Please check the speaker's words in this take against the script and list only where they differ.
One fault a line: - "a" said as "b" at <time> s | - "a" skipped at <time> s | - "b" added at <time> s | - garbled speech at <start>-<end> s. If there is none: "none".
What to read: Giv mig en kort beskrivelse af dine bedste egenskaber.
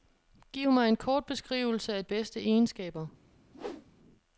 - "dine" skipped at 2.0 s